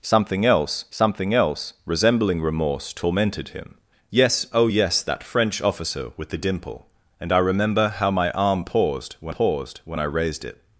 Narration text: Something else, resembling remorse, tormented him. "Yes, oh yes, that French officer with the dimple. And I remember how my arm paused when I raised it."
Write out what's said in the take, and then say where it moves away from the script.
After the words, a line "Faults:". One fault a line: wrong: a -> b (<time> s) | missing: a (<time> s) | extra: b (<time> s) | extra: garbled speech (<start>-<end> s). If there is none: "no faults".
Something else something else, resembling remorse, tormented him. "Yes, oh yes, that French officer with the dimple. And I remember how my arm paused when paused when I raised it."
Faults:
extra: something else (0.9 s)
extra: paused when (9.3 s)